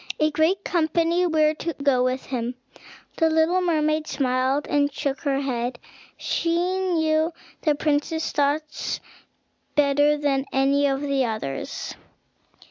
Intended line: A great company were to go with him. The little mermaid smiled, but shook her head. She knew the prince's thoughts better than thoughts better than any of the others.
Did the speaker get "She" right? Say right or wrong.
right